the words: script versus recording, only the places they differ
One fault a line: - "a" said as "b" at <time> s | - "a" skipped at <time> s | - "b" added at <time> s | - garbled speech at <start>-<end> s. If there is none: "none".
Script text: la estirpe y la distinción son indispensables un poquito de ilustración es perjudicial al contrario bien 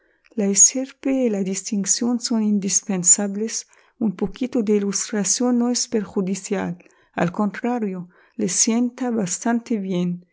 - "no" added at 5.6 s
- "le sienta bastante" added at 8.4 s